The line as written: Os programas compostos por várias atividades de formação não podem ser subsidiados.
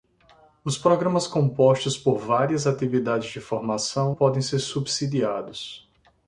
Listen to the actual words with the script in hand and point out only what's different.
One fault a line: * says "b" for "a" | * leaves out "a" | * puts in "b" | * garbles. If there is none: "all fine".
* leaves out "não"